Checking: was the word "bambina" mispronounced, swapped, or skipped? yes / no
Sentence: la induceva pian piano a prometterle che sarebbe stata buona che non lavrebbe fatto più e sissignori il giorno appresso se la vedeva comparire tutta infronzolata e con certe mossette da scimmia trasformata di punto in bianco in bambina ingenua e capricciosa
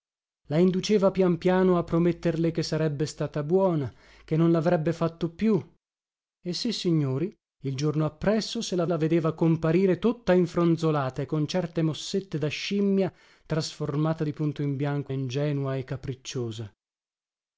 yes